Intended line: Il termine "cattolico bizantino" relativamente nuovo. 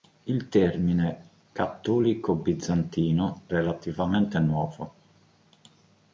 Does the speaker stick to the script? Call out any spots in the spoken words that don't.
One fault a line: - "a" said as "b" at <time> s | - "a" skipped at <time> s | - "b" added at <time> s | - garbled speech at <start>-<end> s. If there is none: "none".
none